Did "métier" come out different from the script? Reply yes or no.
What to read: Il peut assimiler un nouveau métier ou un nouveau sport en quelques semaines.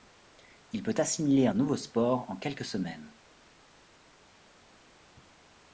yes